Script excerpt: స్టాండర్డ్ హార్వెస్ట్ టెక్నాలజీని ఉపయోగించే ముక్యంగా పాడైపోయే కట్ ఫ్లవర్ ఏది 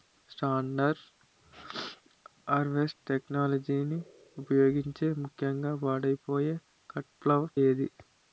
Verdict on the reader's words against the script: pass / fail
pass